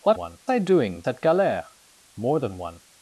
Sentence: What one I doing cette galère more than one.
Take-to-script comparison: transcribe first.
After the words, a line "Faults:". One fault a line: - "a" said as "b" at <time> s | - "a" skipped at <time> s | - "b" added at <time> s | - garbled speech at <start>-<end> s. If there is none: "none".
What one I doing cette galère more than one.
Faults:
none